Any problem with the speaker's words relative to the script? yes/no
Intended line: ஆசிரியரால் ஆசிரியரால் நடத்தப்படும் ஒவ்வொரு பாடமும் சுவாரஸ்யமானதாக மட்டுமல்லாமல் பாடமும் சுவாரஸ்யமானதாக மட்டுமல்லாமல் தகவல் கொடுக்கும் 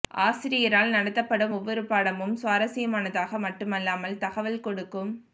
yes